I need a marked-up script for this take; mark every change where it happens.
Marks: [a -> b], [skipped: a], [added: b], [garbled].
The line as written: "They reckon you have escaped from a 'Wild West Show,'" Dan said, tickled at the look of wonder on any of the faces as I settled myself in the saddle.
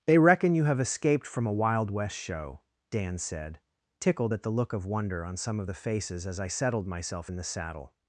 "They reckon you have escaped from a 'Wild West Show,'" Dan said, tickled at the look of wonder on [any -> some] of the faces as I settled myself in the saddle.